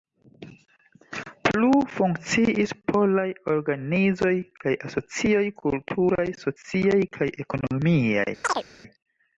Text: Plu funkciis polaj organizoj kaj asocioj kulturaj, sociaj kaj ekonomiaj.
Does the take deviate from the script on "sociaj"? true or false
false